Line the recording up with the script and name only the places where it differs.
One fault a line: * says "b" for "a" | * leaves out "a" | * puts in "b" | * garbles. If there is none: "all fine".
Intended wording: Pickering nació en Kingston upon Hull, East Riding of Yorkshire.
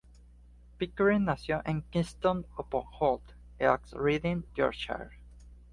* leaves out "of"